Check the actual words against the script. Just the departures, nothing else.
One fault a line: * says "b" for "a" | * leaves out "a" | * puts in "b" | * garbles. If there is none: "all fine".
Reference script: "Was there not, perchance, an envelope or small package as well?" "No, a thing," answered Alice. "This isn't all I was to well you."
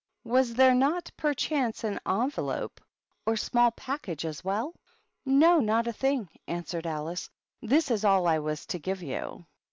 * puts in "not"
* says "is" for "isn't"
* says "give" for "well"